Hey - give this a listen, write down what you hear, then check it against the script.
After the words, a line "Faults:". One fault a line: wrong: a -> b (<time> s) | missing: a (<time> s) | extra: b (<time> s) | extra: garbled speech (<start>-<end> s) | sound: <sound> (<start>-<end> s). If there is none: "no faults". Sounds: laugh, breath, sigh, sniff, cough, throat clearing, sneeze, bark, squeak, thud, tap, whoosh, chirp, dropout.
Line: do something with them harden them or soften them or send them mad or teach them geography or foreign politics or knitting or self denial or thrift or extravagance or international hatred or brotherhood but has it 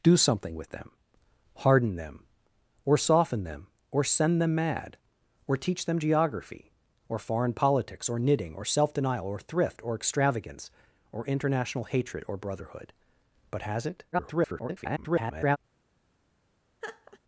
do something with them harden them or soften them or send them mad or teach them geography or foreign politics or knitting or self denial or thrift or extravagance or international hatred or brotherhood but has it [garbled]
Faults:
extra: garbled speech (14.1-15.6 s)
sound: laugh (16.8-17.2 s)